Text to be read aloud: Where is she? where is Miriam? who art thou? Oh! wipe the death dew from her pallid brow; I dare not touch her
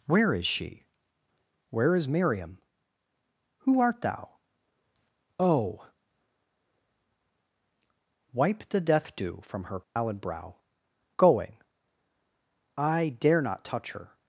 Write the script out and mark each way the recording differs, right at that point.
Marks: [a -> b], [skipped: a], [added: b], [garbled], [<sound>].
Where is she? where is Miriam? who art thou? Oh! wipe the death dew from her pallid [dropout] brow; [added: going] I dare not touch her